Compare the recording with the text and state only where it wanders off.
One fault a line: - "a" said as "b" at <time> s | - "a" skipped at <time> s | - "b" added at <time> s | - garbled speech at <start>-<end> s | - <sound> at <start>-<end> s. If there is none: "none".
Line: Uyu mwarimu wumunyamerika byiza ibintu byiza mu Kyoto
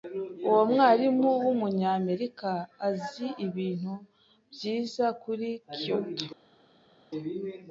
- "Uyu" said as "Uwo" at 0.5 s
- "byiza" said as "azi" at 2.9 s
- "mu" said as "kuri" at 5.2 s